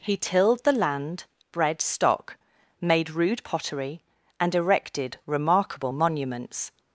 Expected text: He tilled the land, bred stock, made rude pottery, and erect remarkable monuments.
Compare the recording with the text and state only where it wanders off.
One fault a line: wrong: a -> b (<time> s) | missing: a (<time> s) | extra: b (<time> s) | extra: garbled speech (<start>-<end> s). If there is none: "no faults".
wrong: erect -> erected (4.5 s)